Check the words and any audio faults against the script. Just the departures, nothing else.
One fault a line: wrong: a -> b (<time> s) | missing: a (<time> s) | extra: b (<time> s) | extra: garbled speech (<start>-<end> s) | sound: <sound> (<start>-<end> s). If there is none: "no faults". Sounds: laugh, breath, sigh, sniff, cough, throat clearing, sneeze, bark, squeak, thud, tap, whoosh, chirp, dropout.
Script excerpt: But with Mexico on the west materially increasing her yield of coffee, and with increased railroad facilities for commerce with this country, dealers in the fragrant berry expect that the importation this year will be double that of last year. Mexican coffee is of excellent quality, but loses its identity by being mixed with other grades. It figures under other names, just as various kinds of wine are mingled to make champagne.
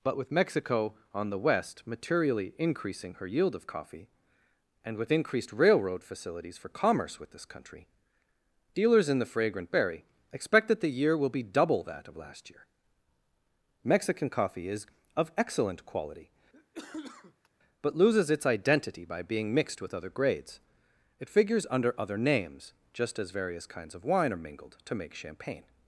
missing: importation this (10.9 s)
sound: cough (16.5-17.5 s)